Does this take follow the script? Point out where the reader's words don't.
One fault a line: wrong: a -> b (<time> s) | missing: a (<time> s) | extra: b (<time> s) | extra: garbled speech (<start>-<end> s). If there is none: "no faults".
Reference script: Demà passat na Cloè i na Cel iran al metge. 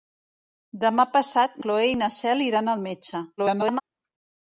missing: na (1.6 s)
extra: garbled speech (3.4-3.8 s)